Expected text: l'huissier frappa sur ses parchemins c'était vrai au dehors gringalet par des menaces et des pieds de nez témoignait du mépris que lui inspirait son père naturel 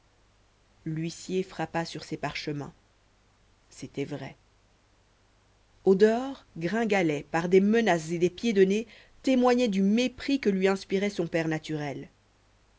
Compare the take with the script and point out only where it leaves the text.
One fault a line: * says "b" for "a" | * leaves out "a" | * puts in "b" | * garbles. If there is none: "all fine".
all fine